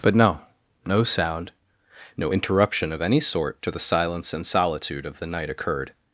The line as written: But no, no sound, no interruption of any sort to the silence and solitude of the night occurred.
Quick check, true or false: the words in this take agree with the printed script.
true